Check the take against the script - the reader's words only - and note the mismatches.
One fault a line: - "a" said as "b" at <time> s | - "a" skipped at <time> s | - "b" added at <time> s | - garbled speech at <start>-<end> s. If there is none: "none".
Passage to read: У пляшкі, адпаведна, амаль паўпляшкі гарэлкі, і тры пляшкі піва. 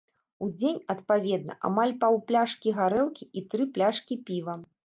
- "пляшкі" said as "дзень" at 0.6 s